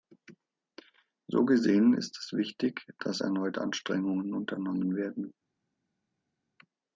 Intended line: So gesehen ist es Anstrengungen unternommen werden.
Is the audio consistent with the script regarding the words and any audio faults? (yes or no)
no